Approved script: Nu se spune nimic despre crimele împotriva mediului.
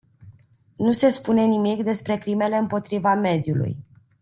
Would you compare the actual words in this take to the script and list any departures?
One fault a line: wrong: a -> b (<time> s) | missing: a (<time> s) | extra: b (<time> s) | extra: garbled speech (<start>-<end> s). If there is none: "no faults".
no faults